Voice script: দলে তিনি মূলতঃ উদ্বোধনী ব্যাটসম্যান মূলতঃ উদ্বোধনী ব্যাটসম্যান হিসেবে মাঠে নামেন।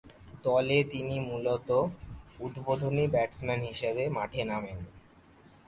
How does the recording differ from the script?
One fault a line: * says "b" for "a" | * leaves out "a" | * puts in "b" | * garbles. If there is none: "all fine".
* leaves out "মূলতঃ উদ্বোধনী ব্যাটসম্যান"